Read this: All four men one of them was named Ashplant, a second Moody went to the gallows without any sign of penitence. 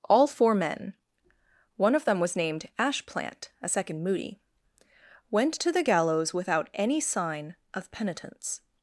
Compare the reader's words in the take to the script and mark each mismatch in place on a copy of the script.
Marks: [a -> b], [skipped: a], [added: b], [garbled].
All four men one of them was named Ashplant, a second Moody went to the gallows without any sign of penitence.